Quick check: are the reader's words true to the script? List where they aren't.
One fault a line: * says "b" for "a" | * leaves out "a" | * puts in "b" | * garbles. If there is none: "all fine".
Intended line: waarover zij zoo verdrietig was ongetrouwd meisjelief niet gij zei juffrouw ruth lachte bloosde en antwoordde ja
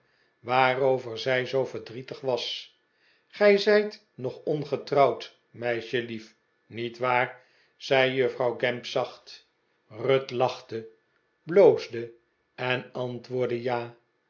* puts in "gij zijt nog"
* says "waar" for "gij"
* puts in "gamp zacht"